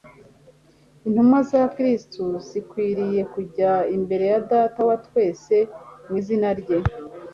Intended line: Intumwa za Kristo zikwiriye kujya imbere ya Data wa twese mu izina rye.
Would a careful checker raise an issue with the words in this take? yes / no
no